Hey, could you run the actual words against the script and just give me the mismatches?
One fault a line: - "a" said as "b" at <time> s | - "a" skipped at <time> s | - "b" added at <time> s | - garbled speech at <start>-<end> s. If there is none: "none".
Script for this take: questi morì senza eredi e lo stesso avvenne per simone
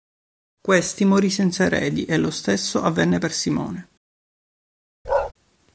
none